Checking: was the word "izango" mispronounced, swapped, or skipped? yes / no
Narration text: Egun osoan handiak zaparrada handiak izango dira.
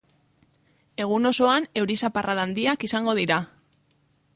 no